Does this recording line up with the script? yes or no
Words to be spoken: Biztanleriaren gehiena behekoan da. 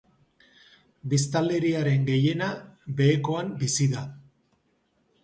no